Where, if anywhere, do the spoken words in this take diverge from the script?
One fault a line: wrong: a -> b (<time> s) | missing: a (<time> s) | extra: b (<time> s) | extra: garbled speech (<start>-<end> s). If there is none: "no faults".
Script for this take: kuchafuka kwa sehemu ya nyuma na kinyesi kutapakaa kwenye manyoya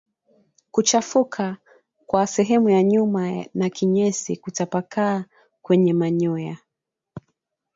no faults